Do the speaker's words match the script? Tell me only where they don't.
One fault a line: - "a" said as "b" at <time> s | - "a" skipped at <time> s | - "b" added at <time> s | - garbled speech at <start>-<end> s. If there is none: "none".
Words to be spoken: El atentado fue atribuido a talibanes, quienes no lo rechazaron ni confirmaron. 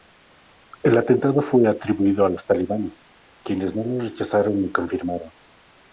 - "los" added at 2.3 s